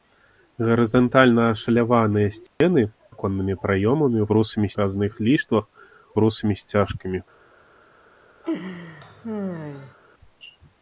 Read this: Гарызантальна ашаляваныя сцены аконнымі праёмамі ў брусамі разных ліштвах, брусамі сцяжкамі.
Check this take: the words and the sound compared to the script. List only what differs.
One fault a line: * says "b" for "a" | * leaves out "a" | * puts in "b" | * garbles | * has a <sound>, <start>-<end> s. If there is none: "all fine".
* has a dropout, 2.5-2.6 s
* has a laugh, 8.4-9.9 s